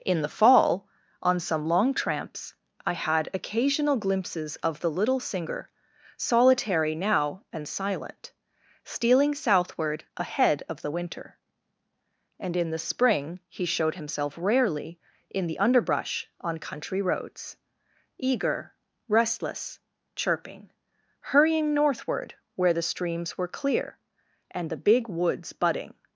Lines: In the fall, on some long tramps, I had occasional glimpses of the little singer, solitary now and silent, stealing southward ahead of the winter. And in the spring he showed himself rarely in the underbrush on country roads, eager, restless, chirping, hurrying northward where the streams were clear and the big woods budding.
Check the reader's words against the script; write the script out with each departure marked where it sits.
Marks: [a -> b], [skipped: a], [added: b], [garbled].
In the fall, on some long tramps, I had occasional glimpses of the little singer, solitary now and silent, stealing southward ahead of the winter. And in the spring he showed himself rarely in the underbrush on country roads, eager, restless, chirping, hurrying northward where the streams were clear and the big woods budding.